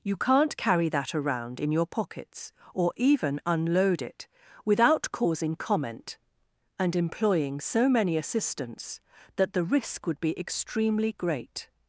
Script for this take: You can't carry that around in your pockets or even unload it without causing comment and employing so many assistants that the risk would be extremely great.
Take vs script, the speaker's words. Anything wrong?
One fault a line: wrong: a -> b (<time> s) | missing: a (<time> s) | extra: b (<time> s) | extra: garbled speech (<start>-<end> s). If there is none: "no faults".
no faults